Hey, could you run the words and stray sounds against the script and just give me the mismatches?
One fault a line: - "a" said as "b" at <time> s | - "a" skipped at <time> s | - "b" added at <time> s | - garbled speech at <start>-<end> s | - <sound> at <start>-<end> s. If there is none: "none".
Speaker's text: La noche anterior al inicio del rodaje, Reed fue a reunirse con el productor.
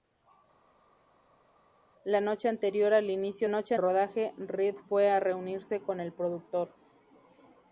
- "del" said as "noche" at 3.5 s